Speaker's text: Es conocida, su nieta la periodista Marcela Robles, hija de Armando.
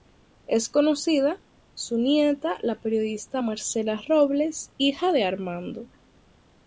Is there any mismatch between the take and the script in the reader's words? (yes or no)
no